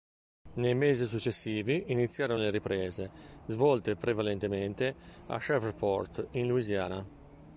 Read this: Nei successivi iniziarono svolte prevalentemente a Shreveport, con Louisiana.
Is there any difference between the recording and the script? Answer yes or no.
yes